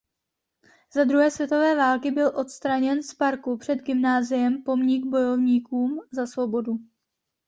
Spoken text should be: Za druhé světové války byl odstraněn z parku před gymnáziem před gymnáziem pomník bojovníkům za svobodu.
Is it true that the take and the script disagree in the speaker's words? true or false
true